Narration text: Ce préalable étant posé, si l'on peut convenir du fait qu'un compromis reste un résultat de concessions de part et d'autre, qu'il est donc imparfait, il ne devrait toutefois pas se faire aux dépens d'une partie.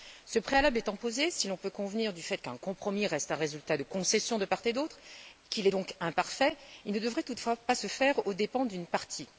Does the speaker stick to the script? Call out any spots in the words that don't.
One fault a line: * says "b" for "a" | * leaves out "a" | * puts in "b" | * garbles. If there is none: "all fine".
all fine